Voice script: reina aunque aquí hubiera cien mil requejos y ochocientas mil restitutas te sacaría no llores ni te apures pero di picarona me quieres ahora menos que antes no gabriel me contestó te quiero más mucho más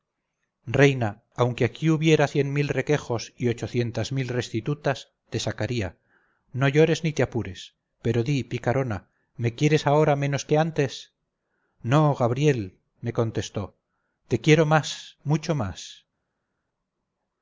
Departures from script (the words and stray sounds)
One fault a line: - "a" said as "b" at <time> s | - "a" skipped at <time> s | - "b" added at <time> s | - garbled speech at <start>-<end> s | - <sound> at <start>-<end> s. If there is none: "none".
none